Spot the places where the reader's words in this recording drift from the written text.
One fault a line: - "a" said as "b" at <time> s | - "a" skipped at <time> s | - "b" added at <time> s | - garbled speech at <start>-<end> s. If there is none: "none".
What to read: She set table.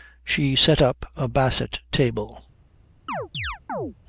- "up a basset" added at 0.8 s